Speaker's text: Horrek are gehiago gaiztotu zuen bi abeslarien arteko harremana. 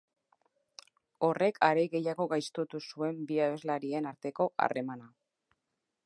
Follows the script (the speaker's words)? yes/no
yes